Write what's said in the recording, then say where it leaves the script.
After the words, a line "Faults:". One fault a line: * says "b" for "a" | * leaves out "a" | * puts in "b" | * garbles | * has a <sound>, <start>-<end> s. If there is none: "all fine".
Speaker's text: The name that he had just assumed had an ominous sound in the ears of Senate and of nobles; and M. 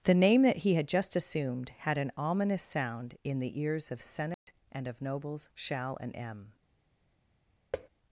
The name that he had just assumed had an ominous sound in the ears of Senate and of nobles; shall and M.
Faults:
* has a dropout, 4.3-4.5 s
* puts in "shall"
* has a thud, 7.7-7.9 s